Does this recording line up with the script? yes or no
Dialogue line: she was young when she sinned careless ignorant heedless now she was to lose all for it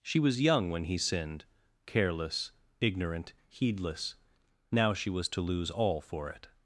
no